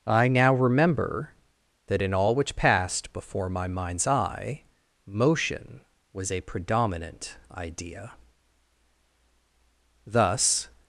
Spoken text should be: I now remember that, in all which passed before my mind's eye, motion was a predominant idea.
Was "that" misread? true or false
false